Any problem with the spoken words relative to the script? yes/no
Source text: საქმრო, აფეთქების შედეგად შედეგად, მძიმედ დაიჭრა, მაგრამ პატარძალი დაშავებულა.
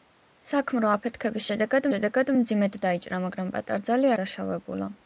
no